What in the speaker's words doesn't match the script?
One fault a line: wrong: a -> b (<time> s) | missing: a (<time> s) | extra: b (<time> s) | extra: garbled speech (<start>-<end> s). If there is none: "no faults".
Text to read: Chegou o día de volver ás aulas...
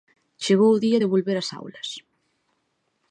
no faults